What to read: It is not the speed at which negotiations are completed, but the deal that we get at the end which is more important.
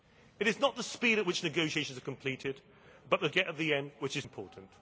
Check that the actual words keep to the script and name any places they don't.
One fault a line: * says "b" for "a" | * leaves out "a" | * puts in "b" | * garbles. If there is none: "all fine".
* leaves out "deal that we"
* leaves out "more"